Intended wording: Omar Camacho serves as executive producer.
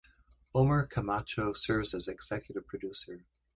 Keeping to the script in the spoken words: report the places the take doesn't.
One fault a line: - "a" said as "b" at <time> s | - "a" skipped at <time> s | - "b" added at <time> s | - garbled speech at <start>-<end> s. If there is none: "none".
none